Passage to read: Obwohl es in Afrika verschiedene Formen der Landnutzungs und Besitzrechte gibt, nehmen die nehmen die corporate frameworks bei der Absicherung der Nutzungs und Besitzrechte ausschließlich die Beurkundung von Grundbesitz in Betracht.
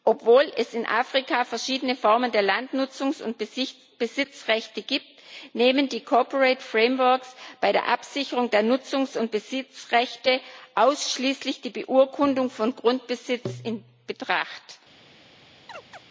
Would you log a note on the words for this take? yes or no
yes